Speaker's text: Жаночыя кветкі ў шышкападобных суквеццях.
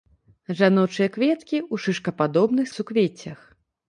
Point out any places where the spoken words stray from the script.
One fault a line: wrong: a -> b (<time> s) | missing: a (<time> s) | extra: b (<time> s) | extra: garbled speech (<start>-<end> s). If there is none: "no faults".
no faults